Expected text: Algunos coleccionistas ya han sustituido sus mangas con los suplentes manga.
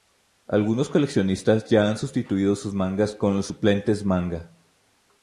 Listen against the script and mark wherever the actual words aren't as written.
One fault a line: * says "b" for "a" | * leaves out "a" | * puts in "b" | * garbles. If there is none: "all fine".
all fine